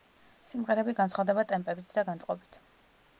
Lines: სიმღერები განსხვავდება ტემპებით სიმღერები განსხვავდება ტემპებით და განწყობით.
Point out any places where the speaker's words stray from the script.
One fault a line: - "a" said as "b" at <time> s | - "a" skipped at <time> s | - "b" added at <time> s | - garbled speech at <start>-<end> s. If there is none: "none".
- "სიმღერები განსხვავდება ტემპებით" skipped at 1.9 s